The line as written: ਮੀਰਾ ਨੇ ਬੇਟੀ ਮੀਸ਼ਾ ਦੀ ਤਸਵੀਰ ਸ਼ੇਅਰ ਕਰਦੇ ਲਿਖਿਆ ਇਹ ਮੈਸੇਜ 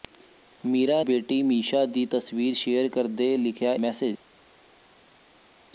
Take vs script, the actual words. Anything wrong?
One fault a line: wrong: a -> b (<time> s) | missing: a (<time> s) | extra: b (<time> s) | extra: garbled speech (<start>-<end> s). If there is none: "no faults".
missing: ਨੇ (1.0 s)
missing: ਇਹ (3.7 s)